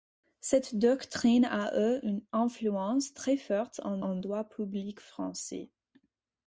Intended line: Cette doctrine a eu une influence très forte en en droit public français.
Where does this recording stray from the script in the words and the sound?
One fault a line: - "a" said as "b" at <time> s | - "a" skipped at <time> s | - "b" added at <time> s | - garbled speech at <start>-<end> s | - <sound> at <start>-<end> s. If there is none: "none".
none